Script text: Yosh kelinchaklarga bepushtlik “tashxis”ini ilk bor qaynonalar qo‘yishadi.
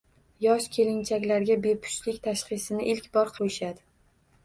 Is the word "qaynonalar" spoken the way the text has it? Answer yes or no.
no